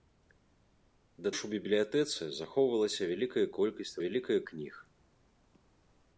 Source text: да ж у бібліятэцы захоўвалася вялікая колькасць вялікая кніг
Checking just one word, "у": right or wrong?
right